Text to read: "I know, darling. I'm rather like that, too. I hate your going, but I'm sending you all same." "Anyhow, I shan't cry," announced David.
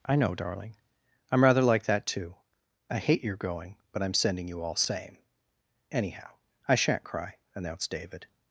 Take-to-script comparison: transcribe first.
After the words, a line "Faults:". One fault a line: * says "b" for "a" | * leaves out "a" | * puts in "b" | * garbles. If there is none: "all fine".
"I know, darling. I'm rather like that, too. I hate your going, but I'm sending you all same." "Anyhow, I shan't cry," announced David.
Faults:
all fine